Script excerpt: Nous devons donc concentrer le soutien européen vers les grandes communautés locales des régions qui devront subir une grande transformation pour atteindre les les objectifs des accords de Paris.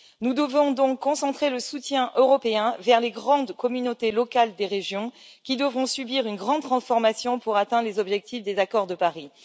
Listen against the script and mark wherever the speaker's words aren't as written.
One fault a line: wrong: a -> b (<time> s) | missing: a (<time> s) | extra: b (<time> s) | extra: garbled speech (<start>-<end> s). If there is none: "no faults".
missing: les (8.0 s)